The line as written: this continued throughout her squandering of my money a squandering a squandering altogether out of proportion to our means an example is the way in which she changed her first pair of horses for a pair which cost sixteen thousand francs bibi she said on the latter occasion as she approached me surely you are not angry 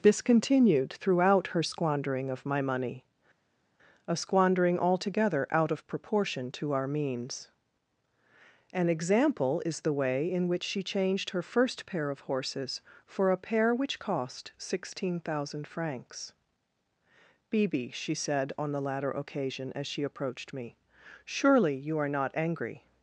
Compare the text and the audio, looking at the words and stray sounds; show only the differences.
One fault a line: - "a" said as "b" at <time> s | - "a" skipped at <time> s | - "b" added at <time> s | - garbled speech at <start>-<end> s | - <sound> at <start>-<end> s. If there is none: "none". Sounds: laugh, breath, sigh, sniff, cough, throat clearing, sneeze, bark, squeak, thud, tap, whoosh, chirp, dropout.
- "a squandering" skipped at 4.8 s